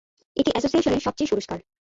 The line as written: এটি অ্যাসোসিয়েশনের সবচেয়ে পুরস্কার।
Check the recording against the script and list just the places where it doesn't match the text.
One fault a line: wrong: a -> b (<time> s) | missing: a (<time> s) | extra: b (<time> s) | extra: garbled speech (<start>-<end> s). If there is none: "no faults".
no faults